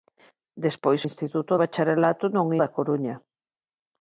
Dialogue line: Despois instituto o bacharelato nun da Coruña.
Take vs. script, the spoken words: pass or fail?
pass